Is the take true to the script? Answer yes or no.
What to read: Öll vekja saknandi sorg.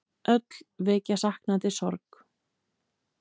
yes